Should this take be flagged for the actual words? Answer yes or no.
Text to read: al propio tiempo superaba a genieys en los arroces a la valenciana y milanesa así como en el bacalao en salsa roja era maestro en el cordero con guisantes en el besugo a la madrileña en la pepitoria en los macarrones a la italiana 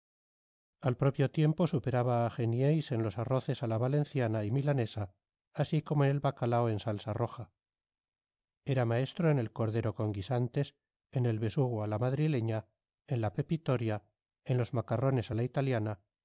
no